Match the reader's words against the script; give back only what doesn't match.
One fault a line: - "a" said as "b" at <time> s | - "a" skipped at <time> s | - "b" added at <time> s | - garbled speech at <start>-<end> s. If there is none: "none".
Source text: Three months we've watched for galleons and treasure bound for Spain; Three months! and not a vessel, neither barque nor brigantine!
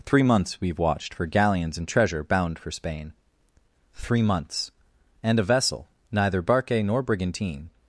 - "not" skipped at 5.4 s